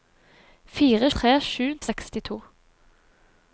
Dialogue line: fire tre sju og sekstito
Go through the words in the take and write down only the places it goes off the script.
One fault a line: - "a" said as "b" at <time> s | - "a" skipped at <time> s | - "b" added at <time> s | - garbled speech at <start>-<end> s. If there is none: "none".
none